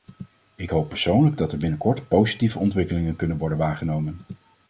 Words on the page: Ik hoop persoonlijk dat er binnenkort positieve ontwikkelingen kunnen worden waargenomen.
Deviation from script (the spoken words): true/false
false